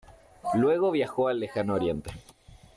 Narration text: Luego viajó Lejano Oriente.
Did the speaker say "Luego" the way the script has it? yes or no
yes